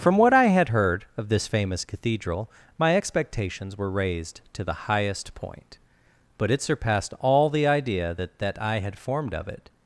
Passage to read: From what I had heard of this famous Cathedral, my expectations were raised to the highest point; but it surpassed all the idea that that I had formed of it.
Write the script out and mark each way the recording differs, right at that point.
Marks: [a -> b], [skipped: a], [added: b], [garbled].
From what I had heard of this famous Cathedral, my expectations were raised to the highest point; but it surpassed all the idea that that I had formed of it.